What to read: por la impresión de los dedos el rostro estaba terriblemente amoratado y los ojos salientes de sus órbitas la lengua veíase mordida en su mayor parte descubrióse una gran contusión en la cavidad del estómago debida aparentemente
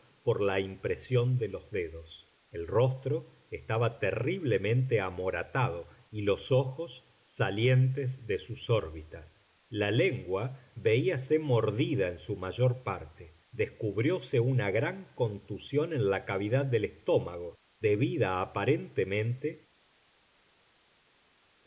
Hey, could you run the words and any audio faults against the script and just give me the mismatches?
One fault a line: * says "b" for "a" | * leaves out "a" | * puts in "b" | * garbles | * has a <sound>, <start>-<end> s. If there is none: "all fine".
all fine